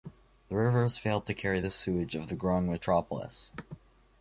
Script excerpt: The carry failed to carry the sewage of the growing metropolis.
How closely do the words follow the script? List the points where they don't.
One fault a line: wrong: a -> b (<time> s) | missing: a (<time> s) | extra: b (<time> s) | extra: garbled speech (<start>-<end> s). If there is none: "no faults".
wrong: carry -> rivers (0.6 s)